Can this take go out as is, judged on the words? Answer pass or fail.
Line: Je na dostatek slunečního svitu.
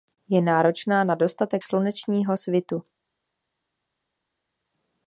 fail